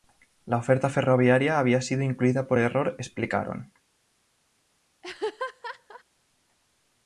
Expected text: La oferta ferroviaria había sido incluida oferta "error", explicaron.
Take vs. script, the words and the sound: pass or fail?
fail